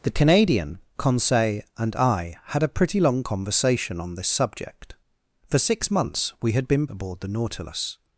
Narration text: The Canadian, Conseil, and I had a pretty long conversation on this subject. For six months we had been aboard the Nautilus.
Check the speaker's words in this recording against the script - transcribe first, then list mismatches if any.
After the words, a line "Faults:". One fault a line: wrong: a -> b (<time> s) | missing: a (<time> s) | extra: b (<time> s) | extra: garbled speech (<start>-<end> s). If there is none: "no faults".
The Canadian, Conseil, and I had a pretty long conversation on this subject. For six months we had been aboard the Nautilus.
Faults:
no faults